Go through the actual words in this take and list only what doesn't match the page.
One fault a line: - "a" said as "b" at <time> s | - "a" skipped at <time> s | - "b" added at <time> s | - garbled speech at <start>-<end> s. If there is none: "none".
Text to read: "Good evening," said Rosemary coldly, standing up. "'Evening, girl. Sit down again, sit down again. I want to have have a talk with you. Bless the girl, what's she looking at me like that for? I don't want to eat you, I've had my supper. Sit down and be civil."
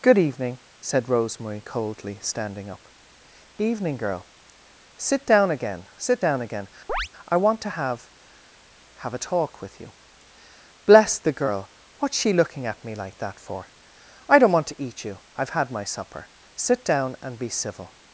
none